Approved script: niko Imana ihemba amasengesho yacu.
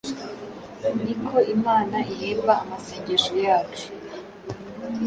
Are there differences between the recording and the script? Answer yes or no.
no